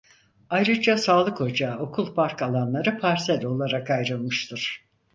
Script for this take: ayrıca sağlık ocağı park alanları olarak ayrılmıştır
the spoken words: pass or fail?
fail